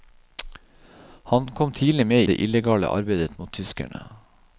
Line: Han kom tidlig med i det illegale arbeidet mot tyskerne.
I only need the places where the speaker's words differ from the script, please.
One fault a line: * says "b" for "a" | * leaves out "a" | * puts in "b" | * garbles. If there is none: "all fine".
* leaves out "i"